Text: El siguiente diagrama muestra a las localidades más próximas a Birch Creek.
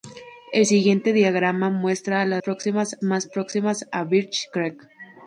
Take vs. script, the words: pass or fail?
fail